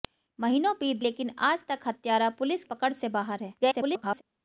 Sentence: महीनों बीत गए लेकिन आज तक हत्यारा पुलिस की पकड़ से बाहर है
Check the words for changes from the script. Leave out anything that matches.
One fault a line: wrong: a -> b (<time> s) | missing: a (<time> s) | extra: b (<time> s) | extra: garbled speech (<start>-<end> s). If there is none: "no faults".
missing: गए (1.0 s)
missing: की (2.6 s)
extra: garbled speech (3.6-4.2 s)